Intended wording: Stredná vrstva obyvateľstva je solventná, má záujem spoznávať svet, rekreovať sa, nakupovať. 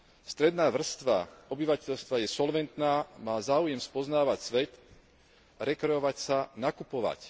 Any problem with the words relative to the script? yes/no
no